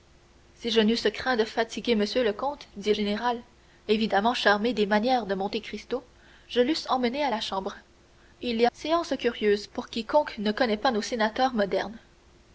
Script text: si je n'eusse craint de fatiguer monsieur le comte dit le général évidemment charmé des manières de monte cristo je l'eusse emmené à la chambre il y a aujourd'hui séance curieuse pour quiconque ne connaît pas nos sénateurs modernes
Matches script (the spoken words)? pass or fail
fail